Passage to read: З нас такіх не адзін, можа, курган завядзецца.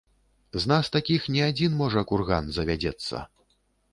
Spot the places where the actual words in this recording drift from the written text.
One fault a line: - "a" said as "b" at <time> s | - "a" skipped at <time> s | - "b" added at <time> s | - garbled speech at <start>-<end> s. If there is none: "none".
none